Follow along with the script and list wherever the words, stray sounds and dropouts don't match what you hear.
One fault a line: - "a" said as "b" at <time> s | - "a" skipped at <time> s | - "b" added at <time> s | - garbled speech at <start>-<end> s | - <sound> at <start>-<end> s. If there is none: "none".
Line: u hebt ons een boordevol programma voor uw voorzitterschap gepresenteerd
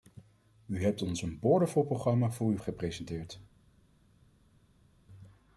- "voorzitterschap" skipped at 2.6 s